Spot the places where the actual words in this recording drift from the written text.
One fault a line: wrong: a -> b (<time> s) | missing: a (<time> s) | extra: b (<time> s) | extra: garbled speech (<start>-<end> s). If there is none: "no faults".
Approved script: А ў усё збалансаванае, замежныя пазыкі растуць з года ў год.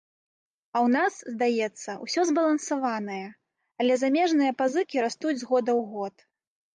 extra: нас здаецца (0.9 s)
extra: але (3.8 s)